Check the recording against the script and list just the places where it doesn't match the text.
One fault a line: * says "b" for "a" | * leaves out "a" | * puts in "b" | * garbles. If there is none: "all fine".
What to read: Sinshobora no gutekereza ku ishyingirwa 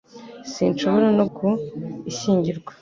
* leaves out "gutekereza"